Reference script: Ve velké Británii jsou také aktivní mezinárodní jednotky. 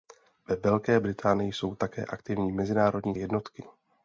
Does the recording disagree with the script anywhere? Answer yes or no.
no